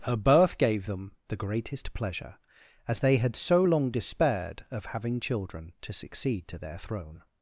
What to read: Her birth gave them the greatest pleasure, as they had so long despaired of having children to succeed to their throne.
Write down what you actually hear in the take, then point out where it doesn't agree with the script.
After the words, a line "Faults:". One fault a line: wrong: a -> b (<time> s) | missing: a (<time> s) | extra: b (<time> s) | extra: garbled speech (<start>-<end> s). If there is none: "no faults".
Her birth gave them the greatest pleasure, as they had so long despaired of having children to succeed to their throne.
Faults:
no faults